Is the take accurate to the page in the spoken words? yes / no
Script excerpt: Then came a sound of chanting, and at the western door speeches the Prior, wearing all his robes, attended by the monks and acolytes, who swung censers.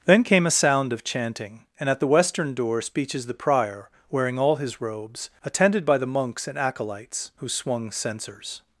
yes